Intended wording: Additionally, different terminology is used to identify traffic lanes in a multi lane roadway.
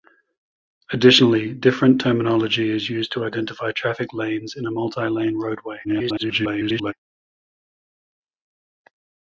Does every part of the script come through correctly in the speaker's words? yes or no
no